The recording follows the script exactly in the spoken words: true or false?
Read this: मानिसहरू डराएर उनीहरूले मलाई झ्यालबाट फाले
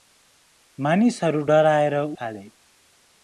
false